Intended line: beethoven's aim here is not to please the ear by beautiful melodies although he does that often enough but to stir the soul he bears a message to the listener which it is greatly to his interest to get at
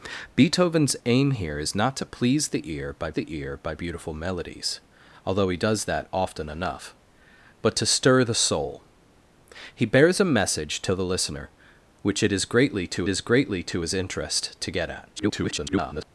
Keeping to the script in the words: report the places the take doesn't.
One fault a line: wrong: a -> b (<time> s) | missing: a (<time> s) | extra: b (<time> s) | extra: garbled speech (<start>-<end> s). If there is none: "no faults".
extra: the ear by (3.1 s)
extra: is greatly to (13.1 s)
extra: garbled speech (15.2-16.1 s)